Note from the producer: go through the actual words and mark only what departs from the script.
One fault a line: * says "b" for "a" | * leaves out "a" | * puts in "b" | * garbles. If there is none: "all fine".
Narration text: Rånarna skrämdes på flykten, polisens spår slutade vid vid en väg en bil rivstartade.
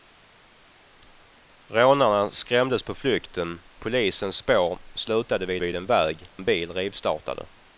all fine